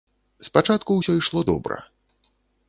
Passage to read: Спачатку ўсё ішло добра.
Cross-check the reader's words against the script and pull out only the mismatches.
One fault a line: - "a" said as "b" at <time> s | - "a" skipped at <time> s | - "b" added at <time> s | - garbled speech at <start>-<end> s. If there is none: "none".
none